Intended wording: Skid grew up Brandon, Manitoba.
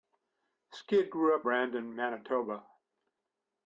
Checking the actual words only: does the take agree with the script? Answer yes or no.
yes